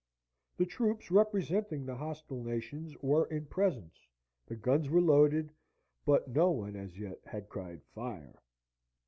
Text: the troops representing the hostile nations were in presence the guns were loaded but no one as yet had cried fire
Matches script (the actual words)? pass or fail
pass